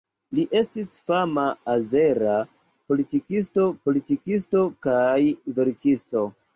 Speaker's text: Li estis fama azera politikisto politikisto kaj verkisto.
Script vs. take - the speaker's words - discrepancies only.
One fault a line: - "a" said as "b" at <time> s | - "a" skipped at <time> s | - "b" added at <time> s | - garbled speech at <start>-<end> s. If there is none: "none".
none